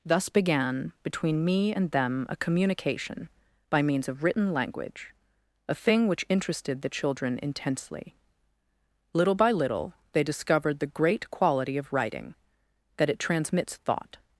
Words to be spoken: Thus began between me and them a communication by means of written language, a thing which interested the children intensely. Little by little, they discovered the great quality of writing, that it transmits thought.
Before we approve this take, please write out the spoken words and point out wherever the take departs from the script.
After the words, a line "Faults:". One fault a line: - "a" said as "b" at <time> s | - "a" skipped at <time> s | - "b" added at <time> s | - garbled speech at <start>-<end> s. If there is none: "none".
Thus began between me and them a communication by means of written language, a thing which interested the children intensely. Little by little, they discovered the great quality of writing, that it transmits thought.
Faults:
none